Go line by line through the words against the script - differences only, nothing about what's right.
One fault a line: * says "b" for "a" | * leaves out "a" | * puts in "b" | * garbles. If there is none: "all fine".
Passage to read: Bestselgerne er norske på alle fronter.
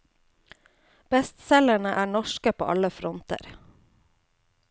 all fine